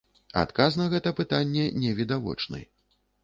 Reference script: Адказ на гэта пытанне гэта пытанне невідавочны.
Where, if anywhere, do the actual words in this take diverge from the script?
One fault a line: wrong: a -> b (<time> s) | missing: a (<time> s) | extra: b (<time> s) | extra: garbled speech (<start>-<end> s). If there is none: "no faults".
missing: гэта пытанне (1.7 s)